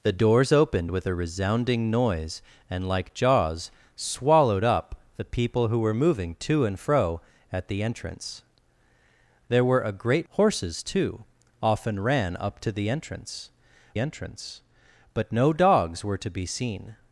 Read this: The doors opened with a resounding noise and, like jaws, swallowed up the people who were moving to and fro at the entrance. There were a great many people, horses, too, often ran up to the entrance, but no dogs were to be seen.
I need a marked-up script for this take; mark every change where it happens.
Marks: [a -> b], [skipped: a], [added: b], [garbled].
The doors opened with a resounding noise and, like jaws, swallowed up the people who were moving to and fro at the entrance. There were a great [skipped: many people,] horses, too, often ran up to the entrance, [added: entrance] but no dogs were to be seen.